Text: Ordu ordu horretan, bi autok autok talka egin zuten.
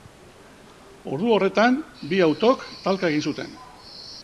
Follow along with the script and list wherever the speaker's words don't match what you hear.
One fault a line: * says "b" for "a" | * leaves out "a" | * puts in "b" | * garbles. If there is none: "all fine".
* leaves out "ordu"
* leaves out "autok"